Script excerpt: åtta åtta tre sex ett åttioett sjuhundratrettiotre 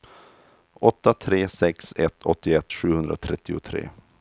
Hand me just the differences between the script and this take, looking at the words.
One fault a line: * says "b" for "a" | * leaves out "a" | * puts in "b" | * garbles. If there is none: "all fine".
* leaves out "åtta"